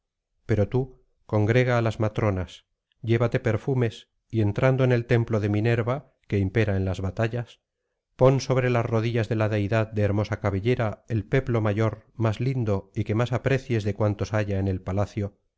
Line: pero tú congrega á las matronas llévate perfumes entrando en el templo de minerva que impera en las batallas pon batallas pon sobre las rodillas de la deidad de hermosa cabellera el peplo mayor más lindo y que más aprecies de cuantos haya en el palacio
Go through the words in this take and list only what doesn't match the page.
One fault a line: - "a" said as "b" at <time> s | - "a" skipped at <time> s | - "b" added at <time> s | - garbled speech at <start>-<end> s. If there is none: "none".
- "y" added at 4.3 s
- "batallas pon" skipped at 8.4 s